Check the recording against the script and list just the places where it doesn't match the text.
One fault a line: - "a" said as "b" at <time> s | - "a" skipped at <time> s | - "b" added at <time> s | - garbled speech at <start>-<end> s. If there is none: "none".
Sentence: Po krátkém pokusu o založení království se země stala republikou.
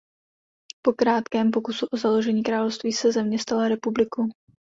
none